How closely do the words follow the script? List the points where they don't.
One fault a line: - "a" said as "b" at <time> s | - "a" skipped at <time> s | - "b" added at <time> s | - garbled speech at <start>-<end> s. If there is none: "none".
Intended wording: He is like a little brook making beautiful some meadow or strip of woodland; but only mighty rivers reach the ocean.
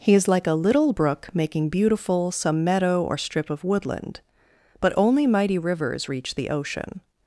none